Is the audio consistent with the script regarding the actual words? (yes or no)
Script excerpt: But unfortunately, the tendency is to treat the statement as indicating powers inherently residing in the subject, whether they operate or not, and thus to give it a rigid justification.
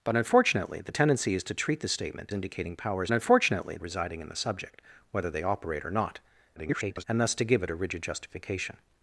no